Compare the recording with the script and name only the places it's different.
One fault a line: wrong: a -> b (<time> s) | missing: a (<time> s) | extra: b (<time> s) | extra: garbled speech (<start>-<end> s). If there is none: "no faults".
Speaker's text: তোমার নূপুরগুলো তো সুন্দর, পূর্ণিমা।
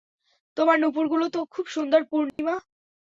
extra: খুব (1.5 s)